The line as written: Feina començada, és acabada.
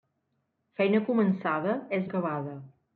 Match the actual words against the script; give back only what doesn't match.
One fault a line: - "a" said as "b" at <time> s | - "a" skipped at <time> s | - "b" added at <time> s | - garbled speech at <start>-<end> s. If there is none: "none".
none